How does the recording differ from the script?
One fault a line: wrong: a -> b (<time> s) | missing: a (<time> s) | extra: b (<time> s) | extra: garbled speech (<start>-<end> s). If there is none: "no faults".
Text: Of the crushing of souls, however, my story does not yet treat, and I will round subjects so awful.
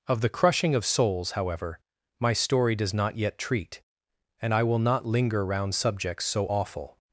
extra: not linger (4.8 s)